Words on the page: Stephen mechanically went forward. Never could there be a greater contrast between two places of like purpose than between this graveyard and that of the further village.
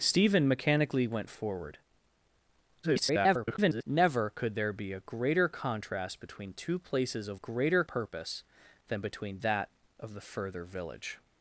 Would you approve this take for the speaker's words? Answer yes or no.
no